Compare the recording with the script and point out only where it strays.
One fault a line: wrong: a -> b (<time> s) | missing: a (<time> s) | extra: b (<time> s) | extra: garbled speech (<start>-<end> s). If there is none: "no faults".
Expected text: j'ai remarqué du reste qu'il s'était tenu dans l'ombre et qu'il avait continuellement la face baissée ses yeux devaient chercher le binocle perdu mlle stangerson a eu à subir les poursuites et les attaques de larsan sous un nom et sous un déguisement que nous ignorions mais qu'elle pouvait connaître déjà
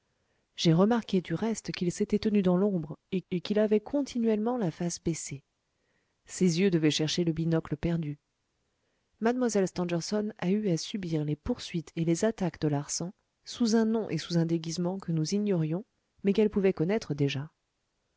extra: et (3.3 s)